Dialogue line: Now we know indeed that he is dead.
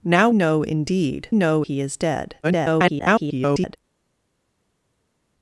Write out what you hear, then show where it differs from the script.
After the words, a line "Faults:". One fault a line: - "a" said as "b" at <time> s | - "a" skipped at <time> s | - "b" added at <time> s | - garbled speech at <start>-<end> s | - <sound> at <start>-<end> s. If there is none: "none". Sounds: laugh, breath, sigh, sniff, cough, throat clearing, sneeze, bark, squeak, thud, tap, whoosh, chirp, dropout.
Now know indeed know he is dead. [garbled]
Faults:
- "we" skipped at 0.3 s
- "that" said as "know" at 1.3 s
- garbled speech at 2.4-3.8 s